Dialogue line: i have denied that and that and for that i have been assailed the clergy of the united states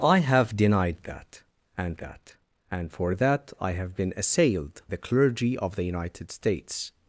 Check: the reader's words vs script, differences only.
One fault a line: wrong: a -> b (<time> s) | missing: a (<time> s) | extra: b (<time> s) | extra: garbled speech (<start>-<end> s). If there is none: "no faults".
no faults